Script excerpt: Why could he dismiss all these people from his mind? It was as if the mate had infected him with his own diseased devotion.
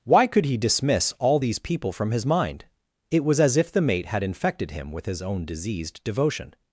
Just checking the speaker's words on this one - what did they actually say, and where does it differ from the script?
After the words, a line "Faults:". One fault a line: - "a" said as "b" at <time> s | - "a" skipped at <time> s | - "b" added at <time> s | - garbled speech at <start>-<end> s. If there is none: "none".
Why could he dismiss all these people from his mind? It was as if the mate had infected him with his own diseased devotion.
Faults:
none